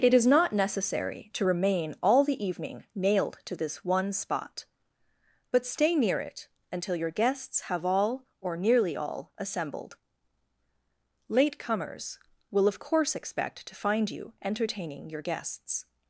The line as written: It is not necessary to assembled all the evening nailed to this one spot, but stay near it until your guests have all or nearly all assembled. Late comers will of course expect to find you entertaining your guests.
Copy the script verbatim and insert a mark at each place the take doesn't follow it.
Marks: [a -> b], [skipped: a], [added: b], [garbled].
It is not necessary to [assembled -> remain] all the evening nailed to this one spot, but stay near it until your guests have all or nearly all assembled. Late comers will of course expect to find you entertaining your guests.